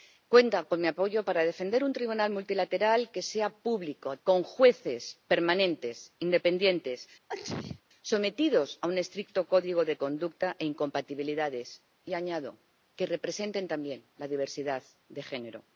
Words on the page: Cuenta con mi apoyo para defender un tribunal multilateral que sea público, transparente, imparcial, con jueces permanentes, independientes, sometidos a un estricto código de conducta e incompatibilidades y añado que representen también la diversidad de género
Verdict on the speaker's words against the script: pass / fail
fail